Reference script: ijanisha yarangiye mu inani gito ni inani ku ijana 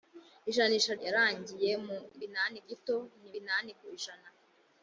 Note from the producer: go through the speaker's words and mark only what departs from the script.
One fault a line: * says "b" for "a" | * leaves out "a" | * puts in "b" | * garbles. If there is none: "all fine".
all fine